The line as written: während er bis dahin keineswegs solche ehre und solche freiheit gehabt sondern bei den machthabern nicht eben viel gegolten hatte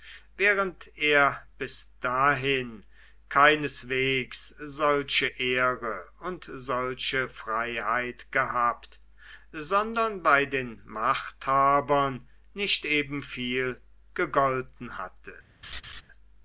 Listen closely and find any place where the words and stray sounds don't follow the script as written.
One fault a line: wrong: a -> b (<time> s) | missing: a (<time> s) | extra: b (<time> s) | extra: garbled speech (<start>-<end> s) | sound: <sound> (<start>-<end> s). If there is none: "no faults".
sound: laugh (15.6-16.0 s)